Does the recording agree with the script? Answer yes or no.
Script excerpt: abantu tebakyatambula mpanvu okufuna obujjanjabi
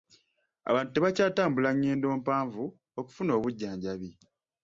no